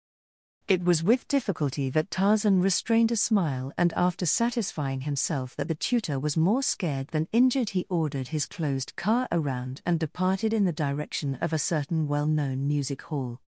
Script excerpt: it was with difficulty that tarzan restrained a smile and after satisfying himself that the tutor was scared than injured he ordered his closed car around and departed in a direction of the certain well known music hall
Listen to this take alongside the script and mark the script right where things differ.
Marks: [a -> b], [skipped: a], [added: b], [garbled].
it was with difficulty that tarzan restrained a smile and after satisfying himself that the tutor was [added: more] scared than injured he ordered his closed car around and departed in [a -> the] direction of [the -> a] certain well known music hall